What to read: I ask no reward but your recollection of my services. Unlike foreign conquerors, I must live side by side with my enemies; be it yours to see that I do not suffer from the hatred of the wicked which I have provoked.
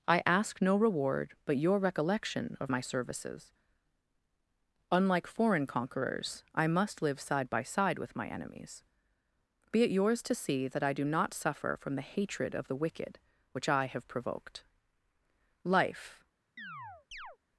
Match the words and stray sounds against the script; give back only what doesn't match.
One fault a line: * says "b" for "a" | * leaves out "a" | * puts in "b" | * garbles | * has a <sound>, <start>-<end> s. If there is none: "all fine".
* puts in "Life"
* has a chirp, 16.6-17.4 s